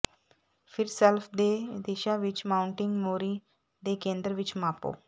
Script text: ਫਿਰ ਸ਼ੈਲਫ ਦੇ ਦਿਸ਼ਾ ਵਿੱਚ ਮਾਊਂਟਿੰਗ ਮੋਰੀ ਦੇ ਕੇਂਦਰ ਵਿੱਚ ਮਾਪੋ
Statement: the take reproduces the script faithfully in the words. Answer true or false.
true